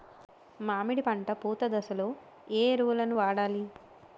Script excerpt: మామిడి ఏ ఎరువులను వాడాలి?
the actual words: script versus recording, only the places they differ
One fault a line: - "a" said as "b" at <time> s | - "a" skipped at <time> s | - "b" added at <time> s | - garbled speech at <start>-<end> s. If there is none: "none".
- "పంట పూత దశలో" added at 1.0 s